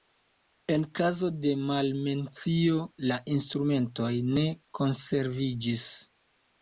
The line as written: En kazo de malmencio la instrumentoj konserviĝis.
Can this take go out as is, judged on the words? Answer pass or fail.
fail